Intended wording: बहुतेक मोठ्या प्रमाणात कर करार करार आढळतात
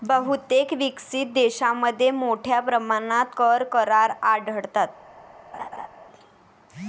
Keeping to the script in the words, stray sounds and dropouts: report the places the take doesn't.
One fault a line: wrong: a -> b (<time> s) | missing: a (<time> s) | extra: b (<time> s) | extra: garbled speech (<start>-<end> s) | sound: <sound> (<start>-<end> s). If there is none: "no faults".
extra: विकसित देशांमध्ये (0.7 s)
missing: करार (4.1 s)
sound: laugh (5.5-5.9 s)